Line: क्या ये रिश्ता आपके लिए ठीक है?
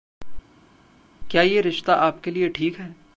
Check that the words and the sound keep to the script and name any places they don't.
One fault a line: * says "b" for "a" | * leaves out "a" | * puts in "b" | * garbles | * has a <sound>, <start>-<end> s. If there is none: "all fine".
all fine